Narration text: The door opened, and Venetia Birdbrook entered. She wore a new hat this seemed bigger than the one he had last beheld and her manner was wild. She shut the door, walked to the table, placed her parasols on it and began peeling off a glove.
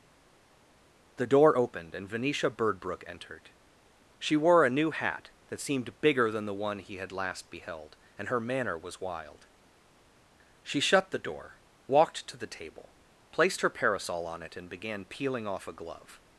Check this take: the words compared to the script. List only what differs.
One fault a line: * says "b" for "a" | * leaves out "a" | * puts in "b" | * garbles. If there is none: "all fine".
* says "that" for "this"
* says "parasol" for "parasols"